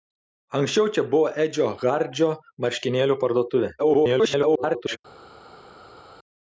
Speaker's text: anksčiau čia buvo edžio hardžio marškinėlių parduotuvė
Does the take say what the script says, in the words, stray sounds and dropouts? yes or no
no